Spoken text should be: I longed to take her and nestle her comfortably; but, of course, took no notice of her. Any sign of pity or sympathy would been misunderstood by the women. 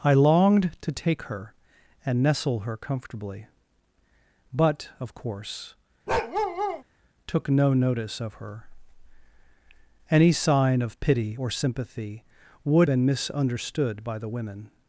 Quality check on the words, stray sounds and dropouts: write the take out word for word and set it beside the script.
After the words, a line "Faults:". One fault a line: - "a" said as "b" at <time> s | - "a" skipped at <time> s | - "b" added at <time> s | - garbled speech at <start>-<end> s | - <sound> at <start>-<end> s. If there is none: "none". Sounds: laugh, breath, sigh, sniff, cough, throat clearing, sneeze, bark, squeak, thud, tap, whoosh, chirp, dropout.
I longed to take her and nestle her comfortably; but, of course, took no notice of her. Any sign of pity or sympathy would been misunderstood by the women.
Faults:
- bark at 6.1-6.8 s